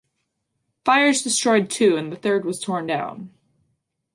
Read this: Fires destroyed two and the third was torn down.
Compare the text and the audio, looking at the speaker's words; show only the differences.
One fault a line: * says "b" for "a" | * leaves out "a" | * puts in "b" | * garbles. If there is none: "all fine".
all fine